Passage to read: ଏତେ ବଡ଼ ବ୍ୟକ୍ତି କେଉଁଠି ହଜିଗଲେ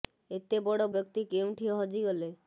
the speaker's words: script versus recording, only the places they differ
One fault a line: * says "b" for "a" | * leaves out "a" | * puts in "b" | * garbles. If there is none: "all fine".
all fine